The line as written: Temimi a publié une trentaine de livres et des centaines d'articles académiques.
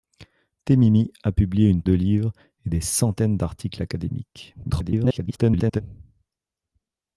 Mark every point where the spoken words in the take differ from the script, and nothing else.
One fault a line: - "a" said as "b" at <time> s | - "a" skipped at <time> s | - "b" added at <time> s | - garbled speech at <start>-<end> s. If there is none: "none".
- "trentaine" skipped at 1.8 s
- garbled speech at 4.6-5.8 s